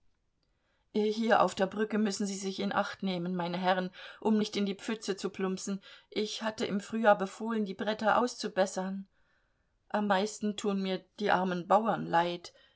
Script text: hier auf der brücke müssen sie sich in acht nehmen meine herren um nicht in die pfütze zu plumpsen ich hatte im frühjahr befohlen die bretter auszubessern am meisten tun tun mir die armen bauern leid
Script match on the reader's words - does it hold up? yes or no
no